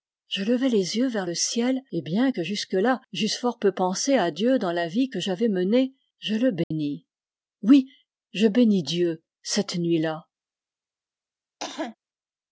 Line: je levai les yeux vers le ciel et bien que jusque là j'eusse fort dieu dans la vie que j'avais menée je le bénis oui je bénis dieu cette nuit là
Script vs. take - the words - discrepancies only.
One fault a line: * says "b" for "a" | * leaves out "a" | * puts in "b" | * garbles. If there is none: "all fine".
* puts in "peu pensé à"